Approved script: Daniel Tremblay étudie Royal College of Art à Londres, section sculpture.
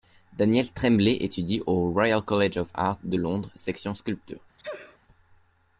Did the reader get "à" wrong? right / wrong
wrong